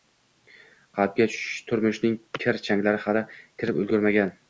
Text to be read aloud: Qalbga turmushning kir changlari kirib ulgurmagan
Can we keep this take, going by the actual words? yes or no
no